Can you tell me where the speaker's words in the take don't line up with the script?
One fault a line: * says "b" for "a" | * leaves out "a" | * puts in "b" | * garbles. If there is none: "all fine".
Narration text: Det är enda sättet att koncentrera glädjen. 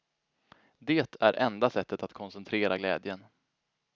all fine